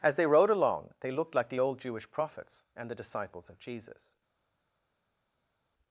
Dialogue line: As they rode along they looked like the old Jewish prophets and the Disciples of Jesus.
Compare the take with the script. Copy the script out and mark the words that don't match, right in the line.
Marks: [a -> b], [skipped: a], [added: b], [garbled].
As they rode along they looked like the old Jewish prophets and the Disciples of Jesus.